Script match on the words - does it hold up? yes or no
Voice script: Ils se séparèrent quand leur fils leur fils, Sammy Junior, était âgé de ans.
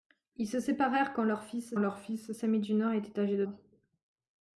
yes